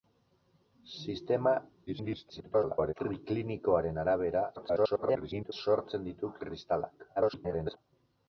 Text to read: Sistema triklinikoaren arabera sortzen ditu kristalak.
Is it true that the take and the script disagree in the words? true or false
true